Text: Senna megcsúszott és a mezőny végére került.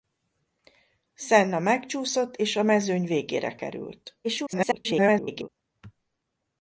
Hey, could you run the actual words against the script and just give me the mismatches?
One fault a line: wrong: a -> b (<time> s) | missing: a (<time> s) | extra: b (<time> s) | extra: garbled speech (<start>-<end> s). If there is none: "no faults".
extra: garbled speech (4.2-5.5 s)